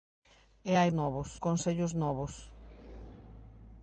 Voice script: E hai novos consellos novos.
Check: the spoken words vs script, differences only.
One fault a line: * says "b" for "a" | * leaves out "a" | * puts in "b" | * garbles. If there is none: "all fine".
all fine